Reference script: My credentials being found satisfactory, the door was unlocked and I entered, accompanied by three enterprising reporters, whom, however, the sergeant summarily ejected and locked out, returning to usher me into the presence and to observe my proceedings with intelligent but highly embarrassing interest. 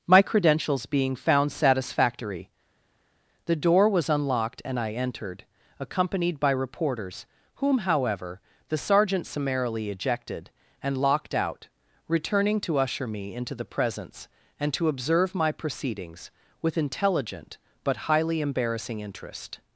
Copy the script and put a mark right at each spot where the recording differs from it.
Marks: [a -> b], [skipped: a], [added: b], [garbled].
My credentials being found satisfactory, the door was unlocked and I entered, accompanied by [skipped: three enterprising] reporters, whom, however, the sergeant summarily ejected and locked out, returning to usher me into the presence and to observe my proceedings with intelligent but highly embarrassing interest.